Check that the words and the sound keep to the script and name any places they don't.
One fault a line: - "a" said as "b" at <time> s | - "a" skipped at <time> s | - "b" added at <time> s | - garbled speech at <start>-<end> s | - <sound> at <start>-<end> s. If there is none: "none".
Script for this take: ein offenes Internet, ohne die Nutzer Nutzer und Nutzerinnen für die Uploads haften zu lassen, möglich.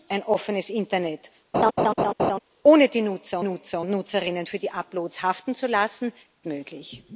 - laugh at 1.5-2.4 s